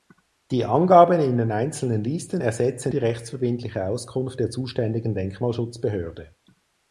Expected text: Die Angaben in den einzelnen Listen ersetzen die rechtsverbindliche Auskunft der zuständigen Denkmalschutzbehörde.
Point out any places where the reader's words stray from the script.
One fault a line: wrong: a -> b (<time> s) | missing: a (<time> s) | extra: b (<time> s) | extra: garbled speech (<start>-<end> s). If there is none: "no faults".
no faults